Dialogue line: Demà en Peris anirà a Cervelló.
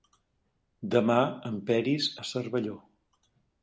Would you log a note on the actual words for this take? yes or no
yes